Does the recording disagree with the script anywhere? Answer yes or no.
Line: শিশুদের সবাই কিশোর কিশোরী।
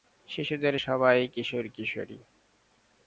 no